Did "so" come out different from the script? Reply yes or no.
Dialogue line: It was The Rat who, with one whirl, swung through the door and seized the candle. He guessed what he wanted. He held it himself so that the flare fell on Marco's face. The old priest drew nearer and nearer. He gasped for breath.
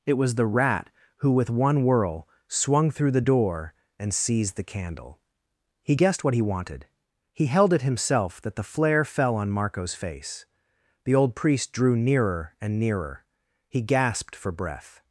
yes